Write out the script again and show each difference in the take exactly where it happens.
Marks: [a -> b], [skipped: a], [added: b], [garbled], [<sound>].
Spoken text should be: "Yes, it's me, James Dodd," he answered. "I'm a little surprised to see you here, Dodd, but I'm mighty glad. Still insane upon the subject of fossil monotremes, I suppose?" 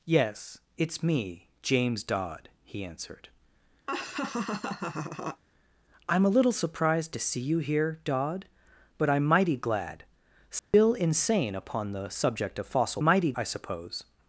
"Yes, it's me, James Dodd," he answered. [laugh] "I'm a little surprised to see you here, Dodd, but I'm mighty glad. Still [dropout] insane upon the subject of fossil [monotremes, -> mighty] I suppose?"